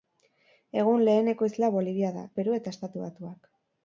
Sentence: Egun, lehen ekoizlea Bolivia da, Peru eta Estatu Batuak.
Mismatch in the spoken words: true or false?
false